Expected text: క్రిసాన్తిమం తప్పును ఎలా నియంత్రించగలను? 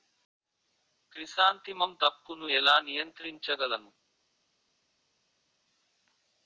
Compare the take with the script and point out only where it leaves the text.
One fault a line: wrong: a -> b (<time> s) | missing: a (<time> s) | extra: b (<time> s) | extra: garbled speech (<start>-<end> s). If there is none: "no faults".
no faults